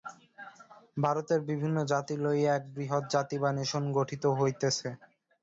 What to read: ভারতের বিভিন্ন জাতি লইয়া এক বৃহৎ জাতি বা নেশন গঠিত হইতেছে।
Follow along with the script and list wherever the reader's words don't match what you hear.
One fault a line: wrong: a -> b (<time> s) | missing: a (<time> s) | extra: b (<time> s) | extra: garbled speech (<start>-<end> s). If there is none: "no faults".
no faults